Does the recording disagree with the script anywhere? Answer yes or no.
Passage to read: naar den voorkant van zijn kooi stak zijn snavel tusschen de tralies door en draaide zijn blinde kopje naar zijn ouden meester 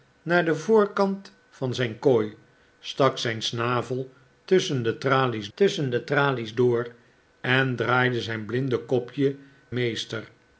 yes